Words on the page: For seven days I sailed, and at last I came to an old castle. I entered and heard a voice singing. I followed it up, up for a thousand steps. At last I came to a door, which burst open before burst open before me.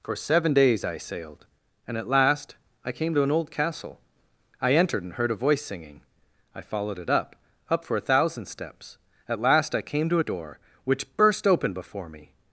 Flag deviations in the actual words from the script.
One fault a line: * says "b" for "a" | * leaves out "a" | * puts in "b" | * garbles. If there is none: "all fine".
* leaves out "burst open before"